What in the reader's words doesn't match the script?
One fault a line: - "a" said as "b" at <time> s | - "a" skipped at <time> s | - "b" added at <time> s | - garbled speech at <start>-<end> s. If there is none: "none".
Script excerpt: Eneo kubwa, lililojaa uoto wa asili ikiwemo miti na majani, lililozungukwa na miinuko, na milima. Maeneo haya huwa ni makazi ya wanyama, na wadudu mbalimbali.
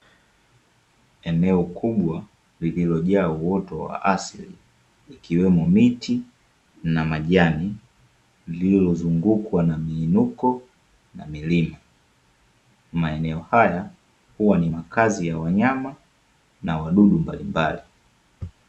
none